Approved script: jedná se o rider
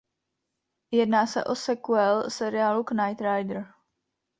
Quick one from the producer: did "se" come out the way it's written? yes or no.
yes